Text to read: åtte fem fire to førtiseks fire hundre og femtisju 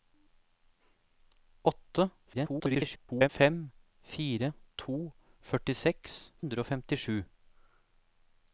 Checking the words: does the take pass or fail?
fail